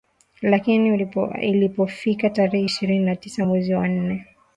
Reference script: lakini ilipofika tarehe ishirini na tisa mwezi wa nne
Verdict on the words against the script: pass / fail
pass